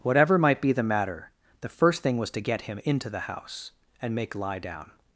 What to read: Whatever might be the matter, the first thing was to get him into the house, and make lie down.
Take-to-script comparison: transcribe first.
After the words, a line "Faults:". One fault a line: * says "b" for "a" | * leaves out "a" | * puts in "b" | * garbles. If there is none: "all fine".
Whatever might be the matter, the first thing was to get him into the house, and make lie down.
Faults:
all fine